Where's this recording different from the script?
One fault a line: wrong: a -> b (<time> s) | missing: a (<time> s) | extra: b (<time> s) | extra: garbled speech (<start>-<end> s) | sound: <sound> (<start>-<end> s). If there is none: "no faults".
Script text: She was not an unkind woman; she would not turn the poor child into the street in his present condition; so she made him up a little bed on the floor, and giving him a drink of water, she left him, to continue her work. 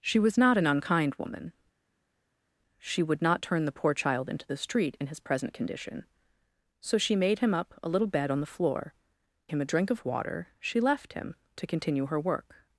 missing: and giving (8.9 s)